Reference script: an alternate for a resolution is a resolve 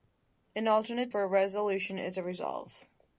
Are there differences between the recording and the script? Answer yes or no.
no